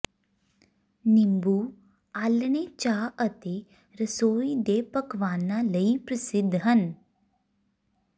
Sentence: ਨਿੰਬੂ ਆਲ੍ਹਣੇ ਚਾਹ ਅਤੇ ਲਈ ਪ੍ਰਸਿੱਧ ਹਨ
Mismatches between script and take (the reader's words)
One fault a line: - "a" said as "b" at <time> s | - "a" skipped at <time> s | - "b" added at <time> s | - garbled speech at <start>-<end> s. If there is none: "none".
- "ਰਸੋਈ ਦੇ ਪਕਵਾਨਾਂ" added at 3.9 s